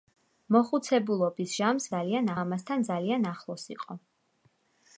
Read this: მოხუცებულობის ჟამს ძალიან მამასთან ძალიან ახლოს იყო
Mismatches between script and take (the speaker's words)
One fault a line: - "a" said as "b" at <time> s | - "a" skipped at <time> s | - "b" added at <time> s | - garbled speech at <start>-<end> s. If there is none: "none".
none